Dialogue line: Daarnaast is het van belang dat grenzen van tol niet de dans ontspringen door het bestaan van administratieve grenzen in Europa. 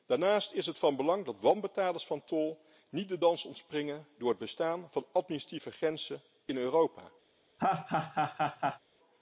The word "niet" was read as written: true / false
true